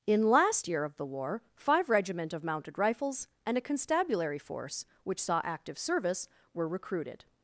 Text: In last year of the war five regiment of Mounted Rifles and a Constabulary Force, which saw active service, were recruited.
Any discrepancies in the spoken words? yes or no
no